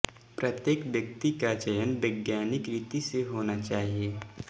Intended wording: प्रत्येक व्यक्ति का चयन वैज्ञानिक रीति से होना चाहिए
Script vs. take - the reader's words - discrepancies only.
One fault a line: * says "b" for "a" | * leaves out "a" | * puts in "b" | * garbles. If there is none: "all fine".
all fine